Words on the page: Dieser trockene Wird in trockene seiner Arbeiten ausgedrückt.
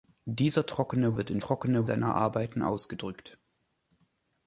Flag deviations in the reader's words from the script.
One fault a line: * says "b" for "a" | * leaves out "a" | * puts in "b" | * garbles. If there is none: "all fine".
all fine